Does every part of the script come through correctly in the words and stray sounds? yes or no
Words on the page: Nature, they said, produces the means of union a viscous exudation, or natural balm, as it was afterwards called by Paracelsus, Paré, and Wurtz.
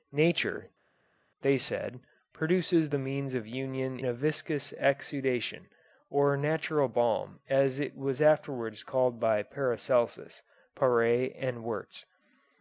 yes